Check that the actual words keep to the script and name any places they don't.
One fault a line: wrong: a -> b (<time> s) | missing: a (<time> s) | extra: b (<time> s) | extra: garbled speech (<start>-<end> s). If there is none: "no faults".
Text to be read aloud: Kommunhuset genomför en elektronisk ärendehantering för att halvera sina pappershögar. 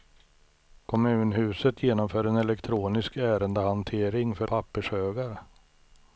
missing: att halvera sina (4.5 s)